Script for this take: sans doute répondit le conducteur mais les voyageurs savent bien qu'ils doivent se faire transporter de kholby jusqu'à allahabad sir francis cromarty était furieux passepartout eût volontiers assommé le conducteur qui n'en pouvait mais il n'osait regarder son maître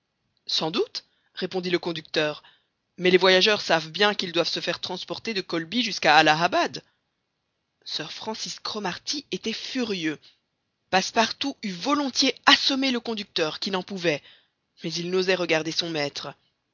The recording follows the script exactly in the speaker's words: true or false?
true